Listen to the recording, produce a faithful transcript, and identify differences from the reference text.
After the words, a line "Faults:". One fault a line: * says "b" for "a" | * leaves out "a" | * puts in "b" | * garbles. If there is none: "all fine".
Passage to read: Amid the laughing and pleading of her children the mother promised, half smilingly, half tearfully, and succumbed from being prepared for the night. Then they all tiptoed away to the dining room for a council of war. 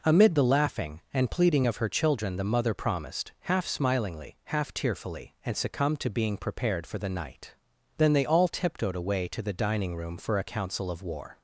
Amid the laughing and pleading of her children the mother promised, half smilingly, half tearfully, and succumbed to being prepared for the night. Then they all tiptoed away to the dining room for a council of war.
Faults:
* says "to" for "from"